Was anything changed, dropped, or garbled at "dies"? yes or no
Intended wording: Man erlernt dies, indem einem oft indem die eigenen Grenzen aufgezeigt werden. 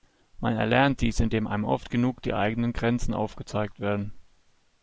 no